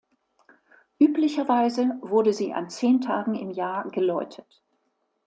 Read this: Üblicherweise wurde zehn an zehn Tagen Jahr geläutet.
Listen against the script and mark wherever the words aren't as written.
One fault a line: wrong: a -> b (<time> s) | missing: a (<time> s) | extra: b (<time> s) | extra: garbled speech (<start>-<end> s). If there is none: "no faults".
wrong: zehn -> sie (2.3 s)
extra: im (3.4 s)